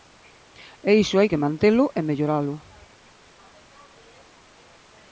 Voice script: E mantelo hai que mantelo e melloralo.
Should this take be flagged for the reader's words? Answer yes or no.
yes